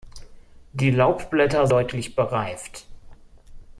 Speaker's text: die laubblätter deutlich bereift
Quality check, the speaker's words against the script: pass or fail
pass